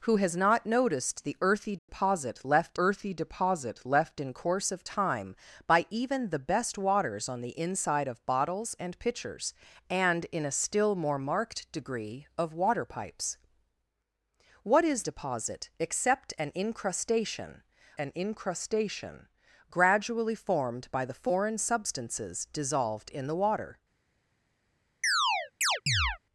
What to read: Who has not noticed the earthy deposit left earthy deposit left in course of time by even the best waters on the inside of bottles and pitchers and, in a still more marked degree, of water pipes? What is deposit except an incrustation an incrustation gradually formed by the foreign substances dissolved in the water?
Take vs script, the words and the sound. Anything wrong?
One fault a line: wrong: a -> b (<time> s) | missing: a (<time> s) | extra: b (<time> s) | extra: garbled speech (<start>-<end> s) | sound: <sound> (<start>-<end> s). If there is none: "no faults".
sound: dropout (1.8-1.9 s)
sound: chirp (25.0-26.2 s)